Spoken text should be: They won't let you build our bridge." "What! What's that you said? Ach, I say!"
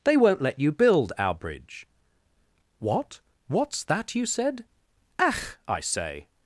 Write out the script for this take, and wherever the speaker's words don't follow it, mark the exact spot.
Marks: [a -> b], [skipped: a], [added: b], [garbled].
They won't let you build our bridge." "What! What's that you said? Ach, I say!"